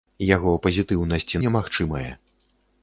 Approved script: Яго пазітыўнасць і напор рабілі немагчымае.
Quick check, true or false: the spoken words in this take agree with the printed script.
false